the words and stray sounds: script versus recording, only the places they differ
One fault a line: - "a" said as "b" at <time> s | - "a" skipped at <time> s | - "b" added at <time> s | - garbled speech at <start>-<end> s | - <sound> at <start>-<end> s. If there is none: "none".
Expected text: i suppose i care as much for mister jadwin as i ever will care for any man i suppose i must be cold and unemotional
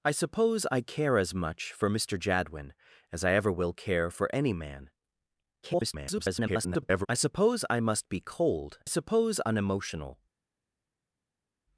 - garbled speech at 5.6-7.1 s
- "and" said as "suppose" at 8.8 s